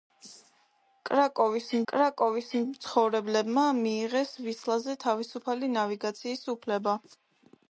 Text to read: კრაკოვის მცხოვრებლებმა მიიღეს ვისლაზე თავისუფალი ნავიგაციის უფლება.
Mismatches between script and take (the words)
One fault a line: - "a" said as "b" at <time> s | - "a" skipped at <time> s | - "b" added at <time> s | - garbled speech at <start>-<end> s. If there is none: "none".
- "კრაკოვის" added at 1.9 s